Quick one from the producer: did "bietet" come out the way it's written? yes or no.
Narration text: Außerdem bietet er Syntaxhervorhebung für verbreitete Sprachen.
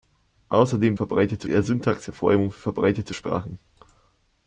no